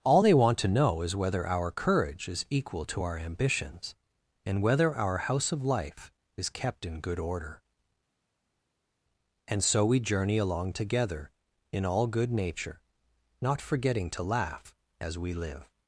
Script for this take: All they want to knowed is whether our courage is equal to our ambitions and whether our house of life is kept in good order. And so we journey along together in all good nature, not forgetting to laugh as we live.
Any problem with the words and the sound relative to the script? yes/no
yes